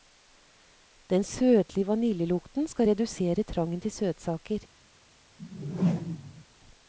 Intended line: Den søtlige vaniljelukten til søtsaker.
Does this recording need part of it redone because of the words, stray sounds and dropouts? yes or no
yes